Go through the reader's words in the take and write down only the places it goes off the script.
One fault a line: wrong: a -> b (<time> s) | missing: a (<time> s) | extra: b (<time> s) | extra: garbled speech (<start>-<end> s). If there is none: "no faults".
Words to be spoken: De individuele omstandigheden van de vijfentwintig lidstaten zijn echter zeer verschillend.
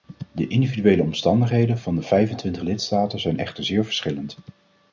no faults